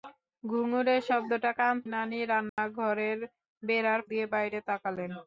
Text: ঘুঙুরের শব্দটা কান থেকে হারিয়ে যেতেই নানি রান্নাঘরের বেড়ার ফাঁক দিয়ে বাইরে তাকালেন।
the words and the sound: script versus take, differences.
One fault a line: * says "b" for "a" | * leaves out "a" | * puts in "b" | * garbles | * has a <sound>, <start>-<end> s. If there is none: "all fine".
* leaves out "থেকে হারিয়ে যেতেই"
* has a dropout, 2.5-2.6 s
* leaves out "ফাঁক"